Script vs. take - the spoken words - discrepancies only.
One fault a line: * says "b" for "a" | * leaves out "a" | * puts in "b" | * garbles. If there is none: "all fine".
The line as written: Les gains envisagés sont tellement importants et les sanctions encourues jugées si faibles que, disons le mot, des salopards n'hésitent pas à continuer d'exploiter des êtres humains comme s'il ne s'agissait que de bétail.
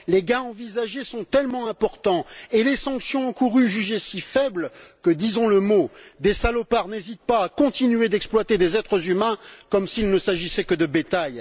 all fine